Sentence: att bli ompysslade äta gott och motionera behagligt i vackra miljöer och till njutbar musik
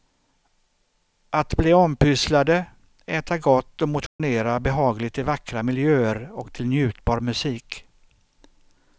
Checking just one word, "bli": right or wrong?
right